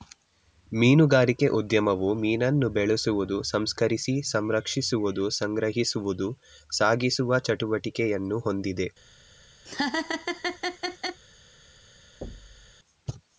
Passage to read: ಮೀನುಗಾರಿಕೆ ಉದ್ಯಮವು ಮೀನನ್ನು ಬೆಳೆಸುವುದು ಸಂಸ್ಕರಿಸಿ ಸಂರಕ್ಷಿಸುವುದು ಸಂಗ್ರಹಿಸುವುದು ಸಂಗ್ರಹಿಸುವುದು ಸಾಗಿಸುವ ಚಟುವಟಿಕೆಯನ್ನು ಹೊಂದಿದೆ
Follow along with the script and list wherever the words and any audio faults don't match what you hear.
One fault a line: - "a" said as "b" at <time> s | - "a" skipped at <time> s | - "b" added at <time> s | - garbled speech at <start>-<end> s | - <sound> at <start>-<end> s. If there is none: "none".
- "ಸಂಗ್ರಹಿಸುವುದು" skipped at 6.3 s
- laugh at 9.7-11.2 s
- thud at 12.2-12.7 s